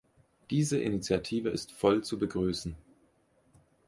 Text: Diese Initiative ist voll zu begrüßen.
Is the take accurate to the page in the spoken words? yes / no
yes